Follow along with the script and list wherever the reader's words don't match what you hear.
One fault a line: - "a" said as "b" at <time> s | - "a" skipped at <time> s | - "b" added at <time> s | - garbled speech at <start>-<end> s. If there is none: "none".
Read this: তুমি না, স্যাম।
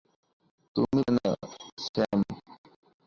none